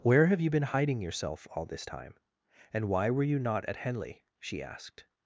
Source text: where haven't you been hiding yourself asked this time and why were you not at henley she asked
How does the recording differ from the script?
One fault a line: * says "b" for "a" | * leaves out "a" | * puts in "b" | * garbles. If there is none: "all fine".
* says "have" for "haven't"
* says "all" for "asked"